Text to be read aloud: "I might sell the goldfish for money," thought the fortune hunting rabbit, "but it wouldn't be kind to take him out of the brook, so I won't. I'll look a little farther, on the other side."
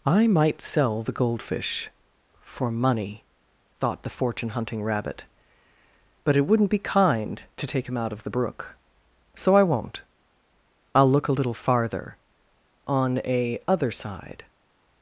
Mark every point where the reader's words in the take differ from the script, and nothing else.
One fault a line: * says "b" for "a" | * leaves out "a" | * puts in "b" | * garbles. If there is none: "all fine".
* says "a" for "the"